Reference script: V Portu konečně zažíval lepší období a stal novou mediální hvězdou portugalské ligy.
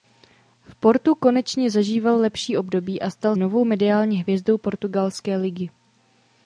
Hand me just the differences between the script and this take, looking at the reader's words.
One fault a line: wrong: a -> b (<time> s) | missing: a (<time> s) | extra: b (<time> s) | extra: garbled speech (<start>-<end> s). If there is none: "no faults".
no faults